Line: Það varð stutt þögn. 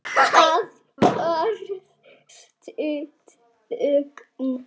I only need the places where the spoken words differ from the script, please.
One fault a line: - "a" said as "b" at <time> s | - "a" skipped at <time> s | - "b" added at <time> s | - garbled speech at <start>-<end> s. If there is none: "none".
none